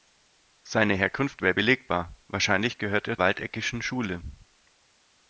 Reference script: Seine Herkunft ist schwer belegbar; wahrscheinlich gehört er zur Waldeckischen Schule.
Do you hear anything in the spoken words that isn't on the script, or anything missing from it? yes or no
yes